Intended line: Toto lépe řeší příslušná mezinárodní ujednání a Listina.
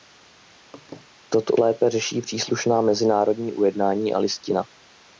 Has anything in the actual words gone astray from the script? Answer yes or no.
no